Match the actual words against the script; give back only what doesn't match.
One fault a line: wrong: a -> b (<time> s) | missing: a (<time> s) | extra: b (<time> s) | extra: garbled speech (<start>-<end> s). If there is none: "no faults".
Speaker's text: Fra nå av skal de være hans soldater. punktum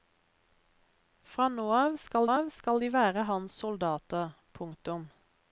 extra: av skal (2.3 s)